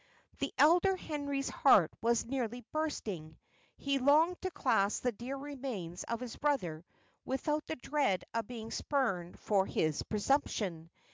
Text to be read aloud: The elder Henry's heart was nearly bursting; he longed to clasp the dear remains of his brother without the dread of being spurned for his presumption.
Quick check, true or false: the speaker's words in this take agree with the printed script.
true